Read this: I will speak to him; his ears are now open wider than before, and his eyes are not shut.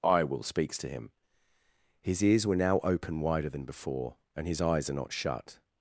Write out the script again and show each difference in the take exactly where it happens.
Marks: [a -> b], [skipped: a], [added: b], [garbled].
I will [speak -> speaks] to him; his ears [are -> were] now open wider than before, and his eyes are not shut.